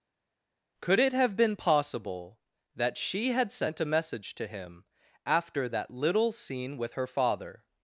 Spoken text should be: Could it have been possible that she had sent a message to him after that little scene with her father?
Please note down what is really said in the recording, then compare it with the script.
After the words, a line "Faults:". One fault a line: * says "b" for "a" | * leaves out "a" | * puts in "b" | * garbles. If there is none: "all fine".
Could it have been possible that she had sent a message to him after that little scene with her father?
Faults:
all fine